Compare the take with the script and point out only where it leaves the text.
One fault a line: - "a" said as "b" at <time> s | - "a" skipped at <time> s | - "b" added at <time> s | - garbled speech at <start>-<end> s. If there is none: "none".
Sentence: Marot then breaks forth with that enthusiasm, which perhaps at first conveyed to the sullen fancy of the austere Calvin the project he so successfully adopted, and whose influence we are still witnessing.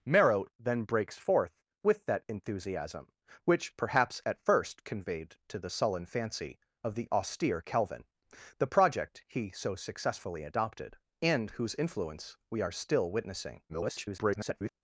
- garbled speech at 13.7-14.7 s